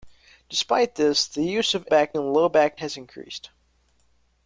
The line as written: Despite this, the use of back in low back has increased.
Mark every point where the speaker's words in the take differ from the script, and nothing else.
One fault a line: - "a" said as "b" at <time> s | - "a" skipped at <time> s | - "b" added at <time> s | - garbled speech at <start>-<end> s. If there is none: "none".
none